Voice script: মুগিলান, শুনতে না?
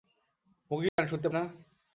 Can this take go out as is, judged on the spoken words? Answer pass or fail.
pass